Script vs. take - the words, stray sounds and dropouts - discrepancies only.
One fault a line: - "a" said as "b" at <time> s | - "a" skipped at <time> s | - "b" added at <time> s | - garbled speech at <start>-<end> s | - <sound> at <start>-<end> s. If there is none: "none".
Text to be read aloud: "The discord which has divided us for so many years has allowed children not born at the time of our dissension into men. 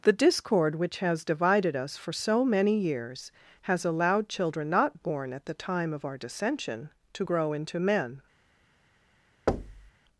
- "to grow" added at 7.1 s
- thud at 9.5-9.9 s